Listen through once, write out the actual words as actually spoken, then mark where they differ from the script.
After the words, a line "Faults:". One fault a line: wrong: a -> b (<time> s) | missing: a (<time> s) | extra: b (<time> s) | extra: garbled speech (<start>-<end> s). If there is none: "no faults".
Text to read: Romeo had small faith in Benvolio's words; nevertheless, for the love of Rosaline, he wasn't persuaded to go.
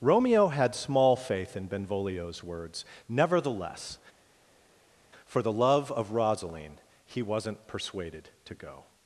Romeo had small faith in Benvolio's words; nevertheless, for the love of Rosaline, he wasn't persuaded to go.
Faults:
no faults